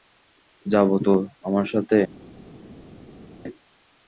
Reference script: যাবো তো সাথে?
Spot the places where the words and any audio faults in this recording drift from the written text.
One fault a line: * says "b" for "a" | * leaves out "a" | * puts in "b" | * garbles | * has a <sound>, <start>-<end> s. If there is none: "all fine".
* puts in "আমার"